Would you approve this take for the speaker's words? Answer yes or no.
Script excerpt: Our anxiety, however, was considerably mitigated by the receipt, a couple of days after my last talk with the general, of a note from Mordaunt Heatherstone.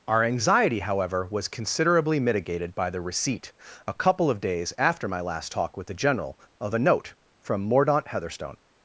yes